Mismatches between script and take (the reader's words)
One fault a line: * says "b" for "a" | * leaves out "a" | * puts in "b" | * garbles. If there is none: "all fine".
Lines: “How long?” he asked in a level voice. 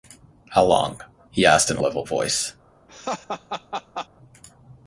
all fine